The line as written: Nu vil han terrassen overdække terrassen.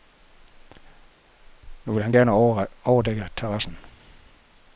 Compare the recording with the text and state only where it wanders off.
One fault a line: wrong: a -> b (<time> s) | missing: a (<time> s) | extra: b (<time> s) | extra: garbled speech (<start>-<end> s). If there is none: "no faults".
wrong: terrassen -> gerne (2.1 s)